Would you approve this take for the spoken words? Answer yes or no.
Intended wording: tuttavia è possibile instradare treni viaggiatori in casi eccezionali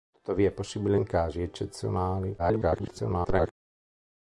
no